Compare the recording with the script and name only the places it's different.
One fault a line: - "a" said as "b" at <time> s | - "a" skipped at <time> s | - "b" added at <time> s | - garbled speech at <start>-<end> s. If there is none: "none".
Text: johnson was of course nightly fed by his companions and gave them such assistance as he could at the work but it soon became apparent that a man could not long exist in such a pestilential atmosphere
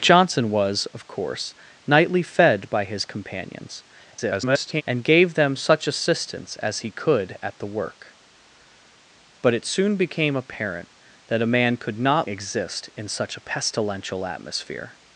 - garbled speech at 4.1-4.8 s
- "long" skipped at 12.3 s